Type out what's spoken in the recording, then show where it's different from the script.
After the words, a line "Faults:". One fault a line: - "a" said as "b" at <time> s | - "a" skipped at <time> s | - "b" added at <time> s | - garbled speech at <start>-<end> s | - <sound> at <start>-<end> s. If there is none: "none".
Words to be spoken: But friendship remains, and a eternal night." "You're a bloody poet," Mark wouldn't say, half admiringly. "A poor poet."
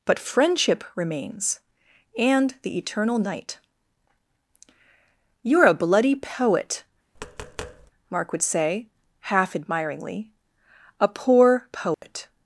But friendship remains, and the eternal night." "You're a bloody poet," Mark would say, half admiringly. "A poor poet."
Faults:
- "a" said as "the" at 2.6 s
- tap at 7.2-7.9 s
- "wouldn't" said as "would" at 8.3 s
- dropout at 11.9-12.0 s